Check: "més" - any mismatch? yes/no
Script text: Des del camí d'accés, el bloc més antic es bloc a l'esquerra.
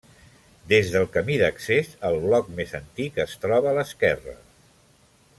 no